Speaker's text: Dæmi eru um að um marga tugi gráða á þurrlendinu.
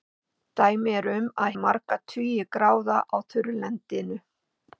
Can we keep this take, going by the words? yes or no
yes